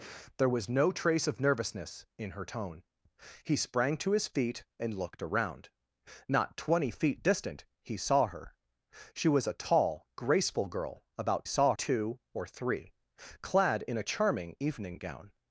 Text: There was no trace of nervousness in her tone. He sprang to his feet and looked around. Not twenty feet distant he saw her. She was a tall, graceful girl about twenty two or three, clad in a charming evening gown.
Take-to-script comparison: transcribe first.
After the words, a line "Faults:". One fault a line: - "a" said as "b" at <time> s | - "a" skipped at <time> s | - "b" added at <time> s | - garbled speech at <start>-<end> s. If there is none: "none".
There was no trace of nervousness in her tone. He sprang to his feet and looked around. Not twenty feet distant he saw her. She was a tall, graceful girl about saw two or three, clad in a charming evening gown.
Faults:
- "twenty" said as "saw" at 11.4 s